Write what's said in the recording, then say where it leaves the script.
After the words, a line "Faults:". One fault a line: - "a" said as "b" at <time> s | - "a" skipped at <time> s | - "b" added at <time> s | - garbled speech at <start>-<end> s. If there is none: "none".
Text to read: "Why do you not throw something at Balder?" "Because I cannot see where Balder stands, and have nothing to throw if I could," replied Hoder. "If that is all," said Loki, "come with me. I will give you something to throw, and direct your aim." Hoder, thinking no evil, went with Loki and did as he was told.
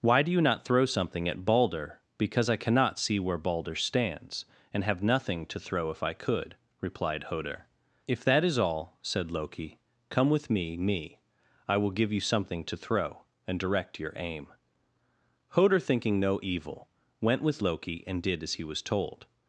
"Why do you not throw something at Balder?" "Because I cannot see where Balder stands, and have nothing to throw if I could," replied Hoder. "If that is all," said Loki, "come with me me. I will give you something to throw, and direct your aim." Hoder, thinking no evil, went with Loki and did as he was told.
Faults:
- "me" added at 10.8 s